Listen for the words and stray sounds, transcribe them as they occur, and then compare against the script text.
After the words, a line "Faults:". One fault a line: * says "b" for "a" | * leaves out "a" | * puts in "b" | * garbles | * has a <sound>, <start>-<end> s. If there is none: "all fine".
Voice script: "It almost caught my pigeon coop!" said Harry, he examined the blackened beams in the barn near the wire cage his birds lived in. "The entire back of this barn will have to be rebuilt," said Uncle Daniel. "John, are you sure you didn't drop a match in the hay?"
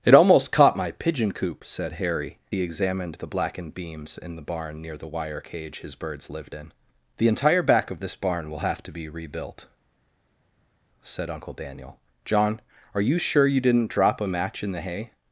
"It almost caught my pigeon coop!" said Harry, he examined the blackened beams in the barn near the wire cage his birds lived in. "The entire back of this barn will have to be rebuilt," said Uncle Daniel. "John, are you sure you didn't drop a match in the hay?"
Faults:
all fine